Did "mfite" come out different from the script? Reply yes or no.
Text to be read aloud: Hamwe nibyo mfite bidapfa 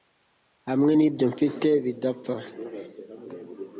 no